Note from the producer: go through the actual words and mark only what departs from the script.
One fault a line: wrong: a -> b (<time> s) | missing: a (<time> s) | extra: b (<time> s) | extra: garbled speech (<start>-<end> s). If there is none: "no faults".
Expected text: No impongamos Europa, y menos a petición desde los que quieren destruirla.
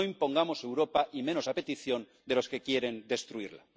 wrong: desde -> de (2.3 s)